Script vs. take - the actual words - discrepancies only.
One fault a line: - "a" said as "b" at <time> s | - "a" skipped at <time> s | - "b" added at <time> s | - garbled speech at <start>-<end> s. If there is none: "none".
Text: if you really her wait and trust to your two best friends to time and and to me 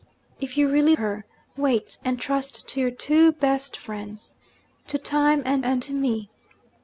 none